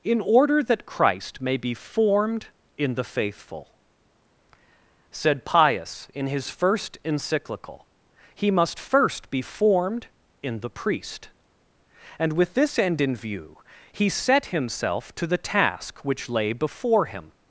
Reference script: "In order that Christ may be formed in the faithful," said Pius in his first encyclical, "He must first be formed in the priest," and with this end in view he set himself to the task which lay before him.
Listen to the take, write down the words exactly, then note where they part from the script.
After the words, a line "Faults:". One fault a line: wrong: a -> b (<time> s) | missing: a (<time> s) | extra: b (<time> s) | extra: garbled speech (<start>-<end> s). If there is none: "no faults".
"In order that Christ may be formed in the faithful," said Pius in his first encyclical, "He must first be formed in the priest," and with this end in view he set himself to the task which lay before him.
Faults:
no faults